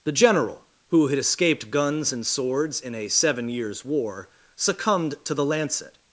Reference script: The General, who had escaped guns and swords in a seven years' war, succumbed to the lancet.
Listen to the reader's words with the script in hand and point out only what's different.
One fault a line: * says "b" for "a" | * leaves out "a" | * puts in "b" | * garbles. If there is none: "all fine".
all fine